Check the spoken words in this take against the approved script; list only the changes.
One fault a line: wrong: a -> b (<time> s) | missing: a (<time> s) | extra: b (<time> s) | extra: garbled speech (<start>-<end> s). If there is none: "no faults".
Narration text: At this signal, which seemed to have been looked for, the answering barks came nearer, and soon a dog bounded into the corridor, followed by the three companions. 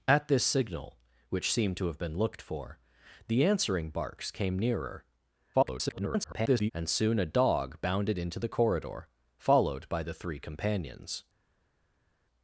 extra: garbled speech (5.5-6.7 s)